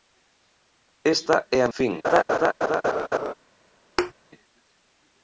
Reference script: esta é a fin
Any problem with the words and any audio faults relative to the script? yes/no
yes